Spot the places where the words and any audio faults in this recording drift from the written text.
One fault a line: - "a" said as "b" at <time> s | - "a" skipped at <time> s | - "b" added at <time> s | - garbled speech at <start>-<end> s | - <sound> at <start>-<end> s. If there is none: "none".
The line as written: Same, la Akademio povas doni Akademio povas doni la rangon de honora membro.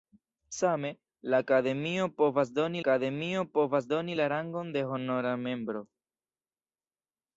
none